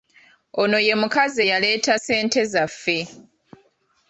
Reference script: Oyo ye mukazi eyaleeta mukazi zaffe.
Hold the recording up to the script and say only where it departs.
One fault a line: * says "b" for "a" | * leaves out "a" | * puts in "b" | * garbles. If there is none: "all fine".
* says "Ono" for "Oyo"
* says "ssente" for "mukazi"